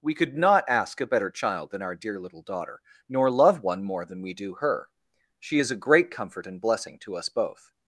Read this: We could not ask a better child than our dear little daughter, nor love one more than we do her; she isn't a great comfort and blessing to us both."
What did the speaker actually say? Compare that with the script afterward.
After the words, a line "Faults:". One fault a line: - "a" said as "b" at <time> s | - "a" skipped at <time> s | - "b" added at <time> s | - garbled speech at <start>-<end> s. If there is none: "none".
We could not ask a better child than our dear little daughter, nor love one more than we do her; she is a great comfort and blessing to us both."
Faults:
- "isn't" said as "is" at 5.6 s